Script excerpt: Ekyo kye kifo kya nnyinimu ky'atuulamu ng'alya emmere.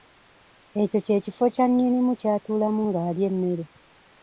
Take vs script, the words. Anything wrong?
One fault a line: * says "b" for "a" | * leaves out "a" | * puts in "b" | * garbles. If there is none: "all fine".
all fine